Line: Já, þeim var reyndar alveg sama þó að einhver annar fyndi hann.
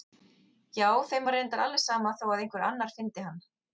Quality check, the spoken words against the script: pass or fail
pass